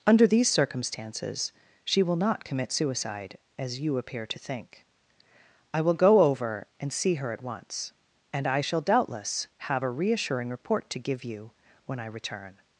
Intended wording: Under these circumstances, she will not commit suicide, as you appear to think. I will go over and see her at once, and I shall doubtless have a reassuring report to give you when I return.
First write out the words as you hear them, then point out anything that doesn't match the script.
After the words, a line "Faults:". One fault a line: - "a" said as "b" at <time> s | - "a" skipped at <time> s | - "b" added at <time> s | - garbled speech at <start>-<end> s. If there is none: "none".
Under these circumstances, she will not commit suicide, as you appear to think. I will go over and see her at once, and I shall doubtless have a reassuring report to give you when I return.
Faults:
none